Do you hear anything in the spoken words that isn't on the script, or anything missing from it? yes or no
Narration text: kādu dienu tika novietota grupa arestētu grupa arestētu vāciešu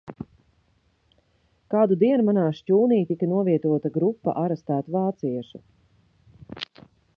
yes